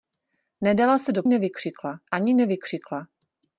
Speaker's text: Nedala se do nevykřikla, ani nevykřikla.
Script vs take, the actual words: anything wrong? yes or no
no